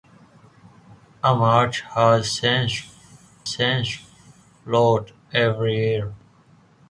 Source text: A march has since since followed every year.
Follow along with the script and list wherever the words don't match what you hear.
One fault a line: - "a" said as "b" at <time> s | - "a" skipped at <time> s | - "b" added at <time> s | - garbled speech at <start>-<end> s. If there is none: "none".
none